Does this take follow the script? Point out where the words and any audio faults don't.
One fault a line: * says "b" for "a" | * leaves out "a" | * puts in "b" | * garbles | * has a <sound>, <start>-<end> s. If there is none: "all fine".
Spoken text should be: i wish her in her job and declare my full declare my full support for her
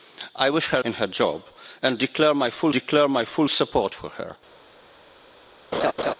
* has a laugh, 5.7-6.1 s